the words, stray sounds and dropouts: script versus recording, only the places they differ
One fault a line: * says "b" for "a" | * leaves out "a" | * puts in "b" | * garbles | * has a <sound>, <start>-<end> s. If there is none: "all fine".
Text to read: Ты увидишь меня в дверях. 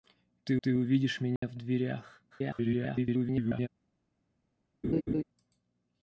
* puts in "ты"
* has a dropout, 1.4-1.4 s
* garbles
* has a laugh, 4.8-5.2 s